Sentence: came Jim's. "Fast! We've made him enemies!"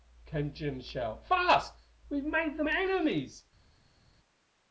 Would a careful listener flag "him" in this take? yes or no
yes